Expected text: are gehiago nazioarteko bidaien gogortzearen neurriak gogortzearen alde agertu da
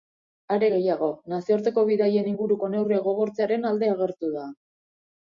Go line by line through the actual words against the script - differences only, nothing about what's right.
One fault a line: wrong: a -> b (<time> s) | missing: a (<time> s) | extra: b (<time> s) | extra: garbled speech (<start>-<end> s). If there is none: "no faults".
wrong: gogortzearen -> inguruko (2.3 s)